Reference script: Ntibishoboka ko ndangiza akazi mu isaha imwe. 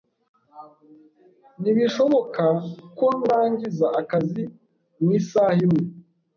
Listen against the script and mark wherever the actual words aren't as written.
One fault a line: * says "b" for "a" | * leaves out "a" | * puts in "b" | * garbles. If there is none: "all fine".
all fine